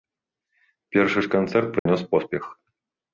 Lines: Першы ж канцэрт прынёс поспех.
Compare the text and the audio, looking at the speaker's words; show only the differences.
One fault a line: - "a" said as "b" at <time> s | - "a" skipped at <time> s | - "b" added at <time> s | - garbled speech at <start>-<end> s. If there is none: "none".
none